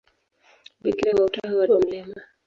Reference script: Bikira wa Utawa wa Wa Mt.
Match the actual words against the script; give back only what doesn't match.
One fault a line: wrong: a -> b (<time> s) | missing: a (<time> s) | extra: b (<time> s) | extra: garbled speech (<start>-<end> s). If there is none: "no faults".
no faults